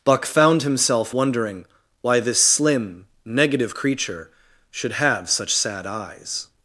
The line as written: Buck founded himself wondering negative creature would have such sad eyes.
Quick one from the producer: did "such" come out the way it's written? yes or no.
yes